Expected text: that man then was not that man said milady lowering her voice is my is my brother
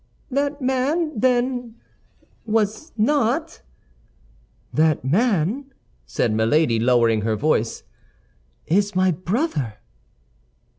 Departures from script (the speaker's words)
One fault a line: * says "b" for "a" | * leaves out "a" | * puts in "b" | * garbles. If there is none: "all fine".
* leaves out "is my"